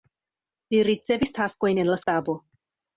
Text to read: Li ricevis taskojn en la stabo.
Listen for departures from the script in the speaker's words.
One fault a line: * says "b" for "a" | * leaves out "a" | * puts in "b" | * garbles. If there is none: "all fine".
all fine